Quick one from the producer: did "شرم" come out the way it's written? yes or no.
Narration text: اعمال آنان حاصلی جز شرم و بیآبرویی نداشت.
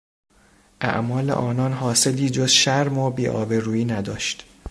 yes